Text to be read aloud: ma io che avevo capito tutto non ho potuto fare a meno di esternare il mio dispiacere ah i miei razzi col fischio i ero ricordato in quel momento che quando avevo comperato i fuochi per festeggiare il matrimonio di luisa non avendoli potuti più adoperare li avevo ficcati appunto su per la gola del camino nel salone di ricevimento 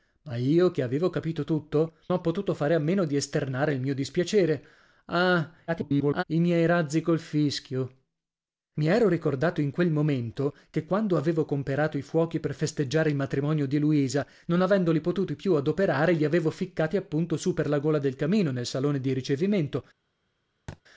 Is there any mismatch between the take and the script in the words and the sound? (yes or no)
yes